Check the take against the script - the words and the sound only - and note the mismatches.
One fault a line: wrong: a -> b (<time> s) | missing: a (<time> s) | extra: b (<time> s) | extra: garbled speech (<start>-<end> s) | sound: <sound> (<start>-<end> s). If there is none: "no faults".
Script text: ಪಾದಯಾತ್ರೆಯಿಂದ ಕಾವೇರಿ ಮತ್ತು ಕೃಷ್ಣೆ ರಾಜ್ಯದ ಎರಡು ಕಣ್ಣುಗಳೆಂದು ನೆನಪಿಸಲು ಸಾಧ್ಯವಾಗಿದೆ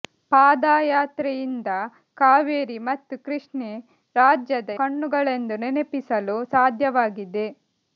missing: ಎರಡು (4.7 s)